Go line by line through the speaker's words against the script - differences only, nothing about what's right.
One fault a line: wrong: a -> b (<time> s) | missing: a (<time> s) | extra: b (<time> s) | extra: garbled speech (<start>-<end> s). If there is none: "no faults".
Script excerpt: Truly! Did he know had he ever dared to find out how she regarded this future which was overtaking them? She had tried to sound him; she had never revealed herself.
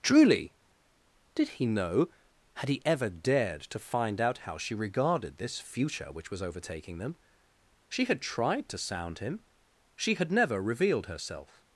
no faults